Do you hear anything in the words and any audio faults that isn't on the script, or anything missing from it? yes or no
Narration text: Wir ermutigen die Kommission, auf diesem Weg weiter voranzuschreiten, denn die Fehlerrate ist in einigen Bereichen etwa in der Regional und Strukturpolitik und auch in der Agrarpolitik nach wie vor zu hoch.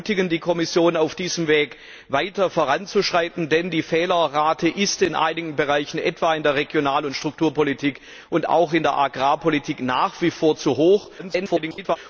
yes